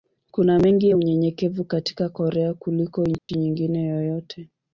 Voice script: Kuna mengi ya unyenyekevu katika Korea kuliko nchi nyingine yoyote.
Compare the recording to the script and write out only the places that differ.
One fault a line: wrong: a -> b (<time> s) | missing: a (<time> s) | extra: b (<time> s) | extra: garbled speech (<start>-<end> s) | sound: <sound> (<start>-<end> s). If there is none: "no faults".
sound: dropout (3.2-3.3 s)